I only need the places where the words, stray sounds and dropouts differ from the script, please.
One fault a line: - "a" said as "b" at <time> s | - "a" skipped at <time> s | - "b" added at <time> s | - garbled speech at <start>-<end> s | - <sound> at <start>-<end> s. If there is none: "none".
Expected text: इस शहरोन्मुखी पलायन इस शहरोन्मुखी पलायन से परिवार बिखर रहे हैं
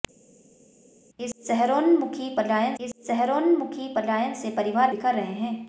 none